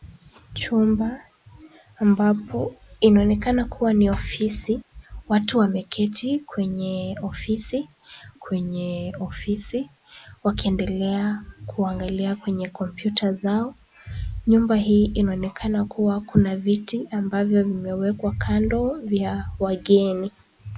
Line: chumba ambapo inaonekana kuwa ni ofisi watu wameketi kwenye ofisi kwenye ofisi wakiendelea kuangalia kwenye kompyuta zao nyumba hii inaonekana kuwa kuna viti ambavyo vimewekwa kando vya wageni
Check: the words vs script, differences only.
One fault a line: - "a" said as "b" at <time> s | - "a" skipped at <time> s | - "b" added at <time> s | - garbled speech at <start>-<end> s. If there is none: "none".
none